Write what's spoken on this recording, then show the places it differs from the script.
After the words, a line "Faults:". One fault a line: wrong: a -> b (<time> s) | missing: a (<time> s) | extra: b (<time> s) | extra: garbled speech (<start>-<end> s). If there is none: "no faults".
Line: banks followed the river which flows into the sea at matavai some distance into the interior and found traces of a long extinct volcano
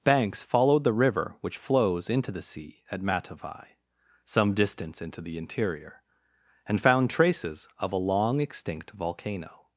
banks followed the river which flows into the sea at matavai some distance into the interior and found traces of a long extinct volcano
Faults:
no faults